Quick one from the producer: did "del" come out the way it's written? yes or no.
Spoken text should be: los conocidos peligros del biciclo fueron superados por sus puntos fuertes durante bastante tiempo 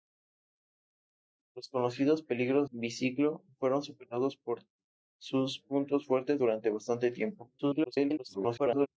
no